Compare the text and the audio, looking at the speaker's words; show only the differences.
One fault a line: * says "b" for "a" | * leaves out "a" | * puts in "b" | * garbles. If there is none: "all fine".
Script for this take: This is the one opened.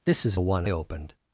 all fine